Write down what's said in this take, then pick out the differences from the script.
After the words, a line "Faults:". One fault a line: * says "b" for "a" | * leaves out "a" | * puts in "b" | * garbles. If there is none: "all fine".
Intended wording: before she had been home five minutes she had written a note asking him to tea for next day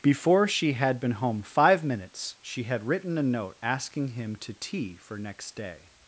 before she had been home five minutes she had written a note asking him to tea for next day
Faults:
all fine